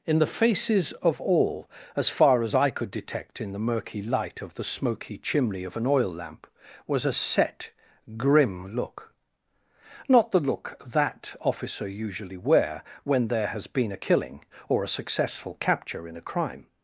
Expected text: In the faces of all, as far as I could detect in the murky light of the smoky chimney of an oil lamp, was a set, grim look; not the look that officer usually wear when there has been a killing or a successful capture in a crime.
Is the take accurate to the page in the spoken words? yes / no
yes